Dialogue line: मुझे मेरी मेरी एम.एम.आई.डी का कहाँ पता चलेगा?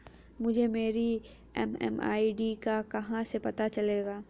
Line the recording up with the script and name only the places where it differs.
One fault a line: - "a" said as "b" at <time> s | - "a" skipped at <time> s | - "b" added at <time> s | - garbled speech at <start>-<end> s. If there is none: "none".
- "मेरी" skipped at 1.2 s
- "से" added at 3.2 s